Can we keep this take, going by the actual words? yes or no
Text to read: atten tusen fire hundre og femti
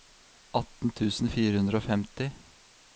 yes